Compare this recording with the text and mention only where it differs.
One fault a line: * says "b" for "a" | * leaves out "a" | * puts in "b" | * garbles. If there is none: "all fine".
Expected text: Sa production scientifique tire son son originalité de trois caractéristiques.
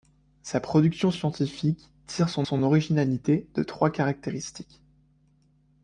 all fine